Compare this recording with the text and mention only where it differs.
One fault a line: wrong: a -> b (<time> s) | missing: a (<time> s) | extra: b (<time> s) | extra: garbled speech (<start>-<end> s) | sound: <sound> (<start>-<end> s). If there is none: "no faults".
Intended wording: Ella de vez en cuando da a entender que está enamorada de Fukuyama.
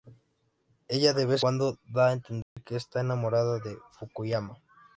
missing: en (1.4 s)
sound: dropout (2.4-2.6 s)